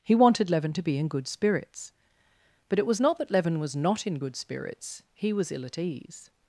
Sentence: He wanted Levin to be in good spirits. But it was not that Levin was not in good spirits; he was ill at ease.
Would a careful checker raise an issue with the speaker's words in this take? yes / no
no